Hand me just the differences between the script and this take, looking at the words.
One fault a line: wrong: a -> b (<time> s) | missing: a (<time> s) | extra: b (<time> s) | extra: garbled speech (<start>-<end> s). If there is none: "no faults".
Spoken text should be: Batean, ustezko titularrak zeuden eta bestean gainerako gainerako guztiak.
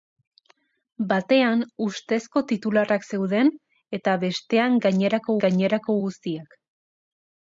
no faults